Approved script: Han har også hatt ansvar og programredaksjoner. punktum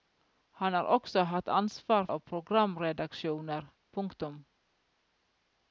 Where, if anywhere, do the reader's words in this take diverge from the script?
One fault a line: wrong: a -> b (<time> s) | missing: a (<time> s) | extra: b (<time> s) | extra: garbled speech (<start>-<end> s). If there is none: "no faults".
no faults